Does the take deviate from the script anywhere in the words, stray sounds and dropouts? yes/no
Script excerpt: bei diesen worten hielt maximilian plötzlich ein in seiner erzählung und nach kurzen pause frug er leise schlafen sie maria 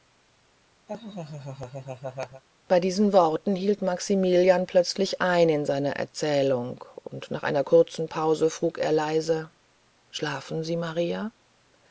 yes